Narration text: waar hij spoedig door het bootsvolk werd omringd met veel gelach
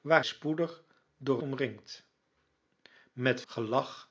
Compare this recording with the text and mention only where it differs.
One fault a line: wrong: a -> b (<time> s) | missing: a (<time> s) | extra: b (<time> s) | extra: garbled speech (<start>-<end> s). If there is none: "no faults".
missing: hij (0.2 s)
missing: het bootsvolk werd (1.4 s)
missing: veel (3.4 s)